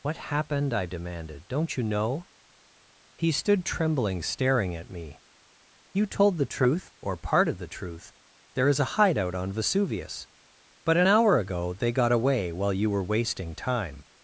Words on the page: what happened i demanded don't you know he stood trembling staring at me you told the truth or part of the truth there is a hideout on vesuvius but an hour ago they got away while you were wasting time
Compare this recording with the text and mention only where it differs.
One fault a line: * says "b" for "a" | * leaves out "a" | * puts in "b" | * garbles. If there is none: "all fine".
all fine